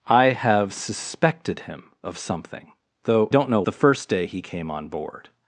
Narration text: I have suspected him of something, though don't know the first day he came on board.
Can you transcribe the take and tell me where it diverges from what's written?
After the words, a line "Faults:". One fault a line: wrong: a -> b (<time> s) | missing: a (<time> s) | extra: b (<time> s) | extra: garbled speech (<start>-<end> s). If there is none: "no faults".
I have suspected him of something, though don't know the first day he came on board.
Faults:
no faults